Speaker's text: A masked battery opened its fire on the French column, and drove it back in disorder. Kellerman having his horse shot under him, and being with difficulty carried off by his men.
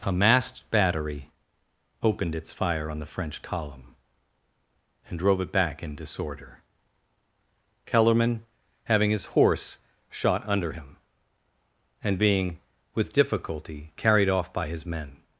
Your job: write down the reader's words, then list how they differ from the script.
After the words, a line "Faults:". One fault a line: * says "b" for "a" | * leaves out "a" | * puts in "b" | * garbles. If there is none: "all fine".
A masked battery opened its fire on the French column, and drove it back in disorder. Kellerman having his horse shot under him, and being with difficulty carried off by his men.
Faults:
all fine